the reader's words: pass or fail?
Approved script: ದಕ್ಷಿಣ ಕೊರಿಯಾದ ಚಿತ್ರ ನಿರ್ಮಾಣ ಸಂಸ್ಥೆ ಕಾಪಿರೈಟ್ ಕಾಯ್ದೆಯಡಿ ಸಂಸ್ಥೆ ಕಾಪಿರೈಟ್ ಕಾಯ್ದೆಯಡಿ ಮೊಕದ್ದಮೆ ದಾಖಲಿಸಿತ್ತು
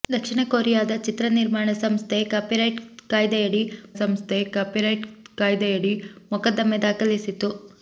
pass